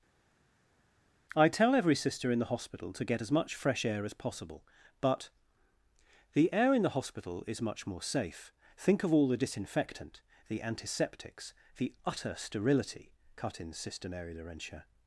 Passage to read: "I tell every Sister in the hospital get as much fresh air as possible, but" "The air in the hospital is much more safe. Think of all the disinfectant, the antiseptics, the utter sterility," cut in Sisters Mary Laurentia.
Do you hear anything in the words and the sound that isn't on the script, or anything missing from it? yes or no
yes